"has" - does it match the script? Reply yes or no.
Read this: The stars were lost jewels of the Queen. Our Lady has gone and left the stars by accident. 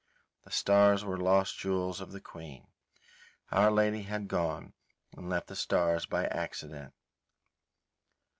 no